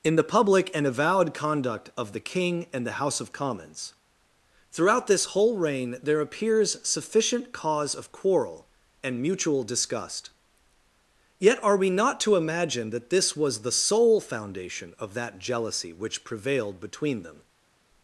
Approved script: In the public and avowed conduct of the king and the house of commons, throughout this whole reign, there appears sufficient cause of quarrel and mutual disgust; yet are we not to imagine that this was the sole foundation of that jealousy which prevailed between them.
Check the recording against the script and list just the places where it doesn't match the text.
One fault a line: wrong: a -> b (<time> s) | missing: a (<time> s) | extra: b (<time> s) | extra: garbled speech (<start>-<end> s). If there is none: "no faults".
no faults